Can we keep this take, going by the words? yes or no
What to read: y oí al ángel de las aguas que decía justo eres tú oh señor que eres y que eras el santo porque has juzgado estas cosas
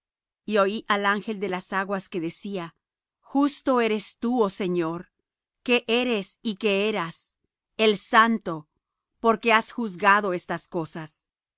yes